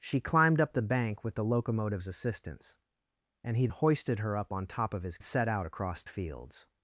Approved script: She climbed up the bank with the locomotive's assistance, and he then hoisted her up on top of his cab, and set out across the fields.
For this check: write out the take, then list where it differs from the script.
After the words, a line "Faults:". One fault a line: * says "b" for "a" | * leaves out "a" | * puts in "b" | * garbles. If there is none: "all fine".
She climbed up the bank with the locomotive's assistance, and he hoisted her up on top of his set out across fields.
Faults:
* leaves out "then"
* leaves out "cab and"
* leaves out "the"